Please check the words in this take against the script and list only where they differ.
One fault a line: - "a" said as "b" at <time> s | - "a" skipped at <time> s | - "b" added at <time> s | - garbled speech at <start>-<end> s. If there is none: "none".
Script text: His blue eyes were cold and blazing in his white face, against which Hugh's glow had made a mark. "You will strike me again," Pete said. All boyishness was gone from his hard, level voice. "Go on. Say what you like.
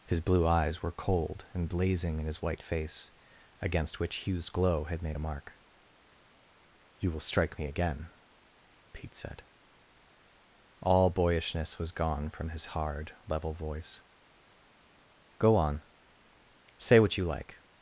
none